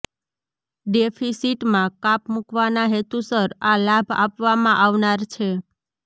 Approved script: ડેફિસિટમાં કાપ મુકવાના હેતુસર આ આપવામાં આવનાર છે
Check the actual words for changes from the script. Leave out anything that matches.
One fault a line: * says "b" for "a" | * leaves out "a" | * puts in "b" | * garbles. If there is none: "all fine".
* puts in "લાભ"